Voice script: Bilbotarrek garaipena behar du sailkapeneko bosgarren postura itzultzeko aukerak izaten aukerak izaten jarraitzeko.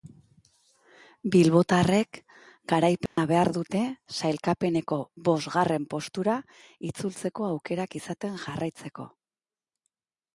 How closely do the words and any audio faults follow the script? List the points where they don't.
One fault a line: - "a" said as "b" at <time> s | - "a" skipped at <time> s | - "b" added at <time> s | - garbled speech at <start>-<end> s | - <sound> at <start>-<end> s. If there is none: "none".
- dropout at 3.1-3.2 s
- "du" said as "dute" at 3.6 s
- "aukerak izaten" skipped at 8.4 s